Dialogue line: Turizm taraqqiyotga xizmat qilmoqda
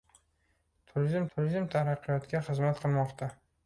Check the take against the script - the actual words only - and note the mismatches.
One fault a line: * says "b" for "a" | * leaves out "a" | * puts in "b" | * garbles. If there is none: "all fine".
* puts in "turizm"